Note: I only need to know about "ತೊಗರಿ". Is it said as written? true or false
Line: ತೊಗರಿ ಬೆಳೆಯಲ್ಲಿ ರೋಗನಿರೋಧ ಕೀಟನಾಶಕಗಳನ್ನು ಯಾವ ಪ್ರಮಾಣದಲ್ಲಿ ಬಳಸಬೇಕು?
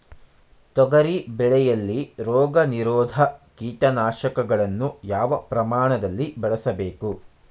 true